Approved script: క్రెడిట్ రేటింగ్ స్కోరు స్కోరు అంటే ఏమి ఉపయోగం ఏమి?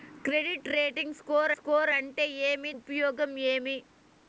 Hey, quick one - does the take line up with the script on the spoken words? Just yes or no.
yes